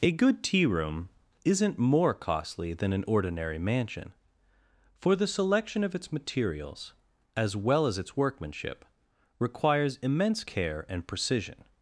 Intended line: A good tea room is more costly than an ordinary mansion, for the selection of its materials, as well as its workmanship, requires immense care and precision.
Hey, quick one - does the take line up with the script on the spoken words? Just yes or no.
no